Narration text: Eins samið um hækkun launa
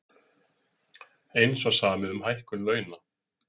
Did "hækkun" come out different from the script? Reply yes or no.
no